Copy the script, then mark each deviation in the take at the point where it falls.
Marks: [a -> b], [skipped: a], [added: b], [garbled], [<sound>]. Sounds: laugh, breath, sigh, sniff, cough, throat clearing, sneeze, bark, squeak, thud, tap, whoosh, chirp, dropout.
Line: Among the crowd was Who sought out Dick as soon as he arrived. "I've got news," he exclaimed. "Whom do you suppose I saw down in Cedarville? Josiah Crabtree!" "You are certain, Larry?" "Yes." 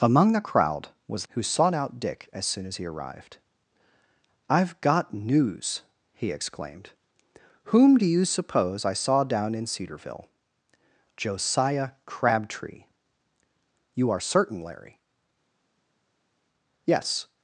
Among the crowd was Who sought out Dick as soon as he arrived. "I've got news," he exclaimed. "Whom do you suppose I saw down in Cedarville? Josiah Crabtree!" "You are certain, Larry?" "Yes."